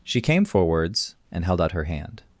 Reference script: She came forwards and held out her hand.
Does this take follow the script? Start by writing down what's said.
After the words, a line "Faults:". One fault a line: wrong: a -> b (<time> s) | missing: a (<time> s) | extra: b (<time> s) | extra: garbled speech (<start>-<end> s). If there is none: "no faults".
She came forwards and held out her hand.
Faults:
no faults